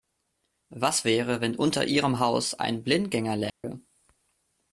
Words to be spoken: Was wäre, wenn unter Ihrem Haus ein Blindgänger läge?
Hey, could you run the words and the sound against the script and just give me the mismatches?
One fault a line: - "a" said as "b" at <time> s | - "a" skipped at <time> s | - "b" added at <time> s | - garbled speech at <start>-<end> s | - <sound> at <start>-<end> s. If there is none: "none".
- dropout at 3.5-3.6 s